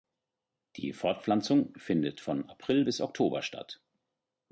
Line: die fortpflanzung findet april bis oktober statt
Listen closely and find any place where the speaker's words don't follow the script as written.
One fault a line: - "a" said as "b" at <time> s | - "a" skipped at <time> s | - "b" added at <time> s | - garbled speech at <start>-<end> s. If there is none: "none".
- "von" added at 2.2 s